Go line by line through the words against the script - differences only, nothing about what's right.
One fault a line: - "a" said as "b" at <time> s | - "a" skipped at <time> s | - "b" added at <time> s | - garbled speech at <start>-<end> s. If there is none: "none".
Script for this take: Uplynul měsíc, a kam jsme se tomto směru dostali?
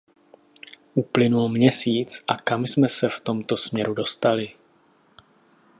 - "v" added at 3.1 s